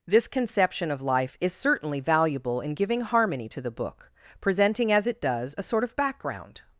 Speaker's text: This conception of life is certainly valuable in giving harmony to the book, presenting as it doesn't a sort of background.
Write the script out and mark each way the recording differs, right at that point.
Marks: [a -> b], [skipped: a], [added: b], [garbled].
This conception of life is certainly valuable in giving harmony to the book, presenting as it [doesn't -> does] a sort of background.